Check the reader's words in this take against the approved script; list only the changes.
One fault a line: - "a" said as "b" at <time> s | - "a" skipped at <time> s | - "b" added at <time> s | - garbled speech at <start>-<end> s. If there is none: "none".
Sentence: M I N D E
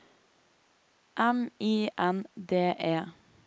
none